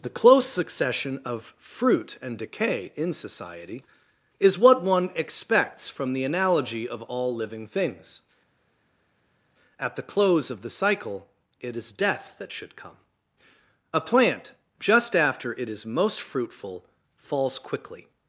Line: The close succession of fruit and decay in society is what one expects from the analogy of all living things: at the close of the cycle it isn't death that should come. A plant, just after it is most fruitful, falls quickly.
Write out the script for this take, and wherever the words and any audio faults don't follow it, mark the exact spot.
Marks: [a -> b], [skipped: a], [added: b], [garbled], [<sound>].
The close succession of fruit and decay in society is what one expects from the analogy of all living things: at the close of the cycle it [isn't -> is] death that should come. A plant, just after it is most fruitful, falls quickly.